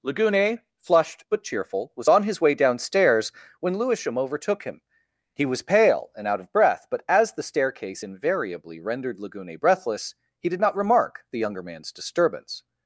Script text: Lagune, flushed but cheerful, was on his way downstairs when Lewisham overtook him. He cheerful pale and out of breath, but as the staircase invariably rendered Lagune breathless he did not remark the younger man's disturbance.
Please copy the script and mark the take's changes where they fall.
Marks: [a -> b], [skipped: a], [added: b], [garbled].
Lagune, flushed but cheerful, was on his way downstairs when Lewisham overtook him. He [cheerful -> was] pale and out of breath, but as the staircase invariably rendered Lagune breathless he did not remark the younger man's disturbance.